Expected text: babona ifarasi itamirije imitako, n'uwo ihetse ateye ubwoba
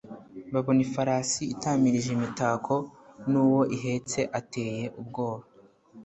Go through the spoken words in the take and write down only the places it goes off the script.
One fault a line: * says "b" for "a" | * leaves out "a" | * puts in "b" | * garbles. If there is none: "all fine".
all fine